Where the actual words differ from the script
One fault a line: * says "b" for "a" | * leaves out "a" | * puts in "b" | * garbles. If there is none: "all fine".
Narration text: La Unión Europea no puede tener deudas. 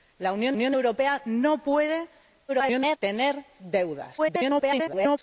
* puts in "Unión"
* garbles
* garbles